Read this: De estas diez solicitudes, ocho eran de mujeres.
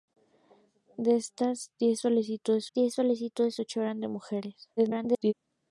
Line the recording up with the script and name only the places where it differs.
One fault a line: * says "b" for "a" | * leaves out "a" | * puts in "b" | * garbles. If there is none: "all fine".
* puts in "diez solicitudes"
* garbles